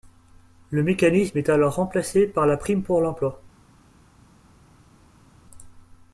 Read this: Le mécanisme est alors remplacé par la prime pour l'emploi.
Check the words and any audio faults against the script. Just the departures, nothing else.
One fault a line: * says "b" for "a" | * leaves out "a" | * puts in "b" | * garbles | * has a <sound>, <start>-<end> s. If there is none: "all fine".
all fine